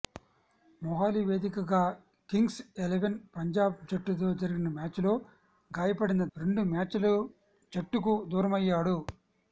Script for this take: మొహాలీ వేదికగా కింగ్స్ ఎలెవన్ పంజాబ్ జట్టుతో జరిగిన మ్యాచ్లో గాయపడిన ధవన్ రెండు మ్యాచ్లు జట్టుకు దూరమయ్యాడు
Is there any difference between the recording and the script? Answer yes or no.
yes